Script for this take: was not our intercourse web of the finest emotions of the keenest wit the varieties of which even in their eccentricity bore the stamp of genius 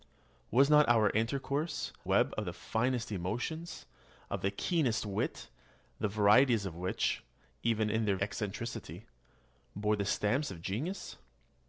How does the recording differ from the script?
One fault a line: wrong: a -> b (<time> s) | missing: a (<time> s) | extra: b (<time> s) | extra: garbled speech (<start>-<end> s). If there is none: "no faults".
no faults